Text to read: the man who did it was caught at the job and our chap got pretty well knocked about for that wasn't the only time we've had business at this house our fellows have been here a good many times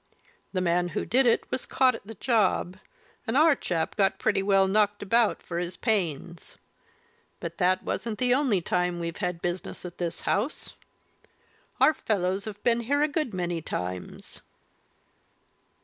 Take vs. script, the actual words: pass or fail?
fail